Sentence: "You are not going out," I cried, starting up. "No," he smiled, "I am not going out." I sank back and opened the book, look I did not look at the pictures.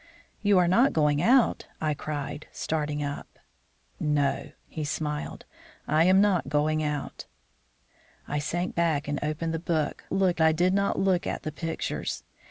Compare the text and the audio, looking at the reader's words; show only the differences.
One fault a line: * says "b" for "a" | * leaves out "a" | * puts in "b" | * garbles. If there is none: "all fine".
all fine